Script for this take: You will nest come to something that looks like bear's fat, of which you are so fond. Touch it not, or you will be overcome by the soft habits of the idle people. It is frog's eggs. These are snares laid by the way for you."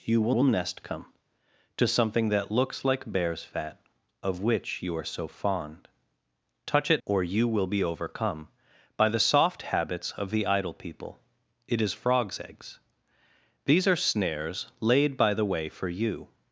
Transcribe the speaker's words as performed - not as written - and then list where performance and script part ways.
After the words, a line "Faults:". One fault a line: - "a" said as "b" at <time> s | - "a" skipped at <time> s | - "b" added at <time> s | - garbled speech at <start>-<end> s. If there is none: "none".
You will will nest come to something that looks like bear's fat, of which you are so fond. Touch it or you will be overcome by the soft habits of the idle people. It is frog's eggs. These are snares laid by the way for you."
Faults:
- "will" added at 0.3 s
- "not" skipped at 7.0 s